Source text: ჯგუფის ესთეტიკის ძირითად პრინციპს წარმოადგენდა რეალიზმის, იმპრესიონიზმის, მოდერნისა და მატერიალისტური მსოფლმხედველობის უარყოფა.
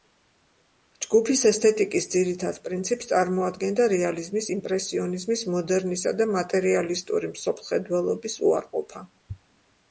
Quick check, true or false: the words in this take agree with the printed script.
true